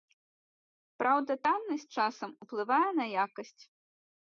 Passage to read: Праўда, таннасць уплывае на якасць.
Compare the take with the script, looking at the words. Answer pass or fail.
fail